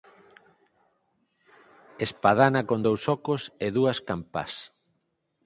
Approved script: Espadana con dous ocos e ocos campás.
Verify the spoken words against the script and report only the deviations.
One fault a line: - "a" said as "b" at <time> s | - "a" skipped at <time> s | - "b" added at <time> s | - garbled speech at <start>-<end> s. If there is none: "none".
- "ocos" said as "dúas" at 3.8 s